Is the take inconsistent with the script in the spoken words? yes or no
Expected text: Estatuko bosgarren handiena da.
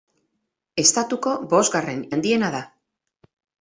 no